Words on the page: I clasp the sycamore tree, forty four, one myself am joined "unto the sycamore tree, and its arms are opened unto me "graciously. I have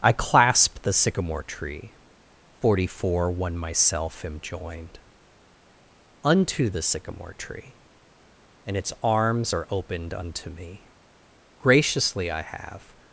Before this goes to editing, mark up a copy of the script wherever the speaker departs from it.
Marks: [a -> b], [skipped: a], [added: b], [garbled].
I clasp the sycamore tree, forty four, one myself am joined "unto the sycamore tree, and its arms are opened unto me "graciously. I have